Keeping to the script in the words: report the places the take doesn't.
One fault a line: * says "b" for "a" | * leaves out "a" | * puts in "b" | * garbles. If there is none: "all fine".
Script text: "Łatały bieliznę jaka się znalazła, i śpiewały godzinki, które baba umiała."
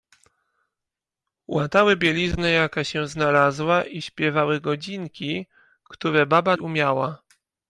all fine